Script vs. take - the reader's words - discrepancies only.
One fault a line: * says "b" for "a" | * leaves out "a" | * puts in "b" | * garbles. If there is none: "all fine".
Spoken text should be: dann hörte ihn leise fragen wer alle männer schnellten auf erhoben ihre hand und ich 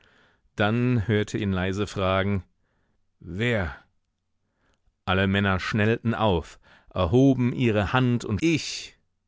all fine